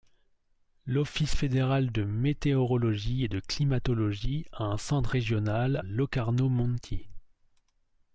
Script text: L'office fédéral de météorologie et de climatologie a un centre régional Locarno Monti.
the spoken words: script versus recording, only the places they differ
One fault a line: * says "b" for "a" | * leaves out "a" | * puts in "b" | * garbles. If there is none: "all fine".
all fine